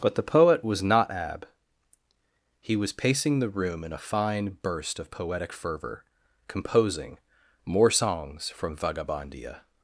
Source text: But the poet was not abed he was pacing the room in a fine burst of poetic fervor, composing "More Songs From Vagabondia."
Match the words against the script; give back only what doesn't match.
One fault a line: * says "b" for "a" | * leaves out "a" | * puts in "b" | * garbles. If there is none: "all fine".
* says "ab" for "abed"